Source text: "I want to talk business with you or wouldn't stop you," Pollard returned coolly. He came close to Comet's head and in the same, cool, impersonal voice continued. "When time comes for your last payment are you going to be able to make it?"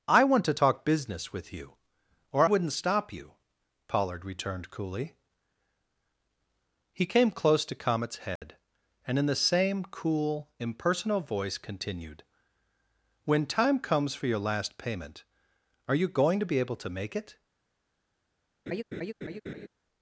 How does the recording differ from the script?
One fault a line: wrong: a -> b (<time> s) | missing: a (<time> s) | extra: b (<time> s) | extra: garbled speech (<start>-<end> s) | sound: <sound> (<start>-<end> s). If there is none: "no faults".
sound: dropout (8.4-8.4 s)
sound: laugh (18.7-19.7 s)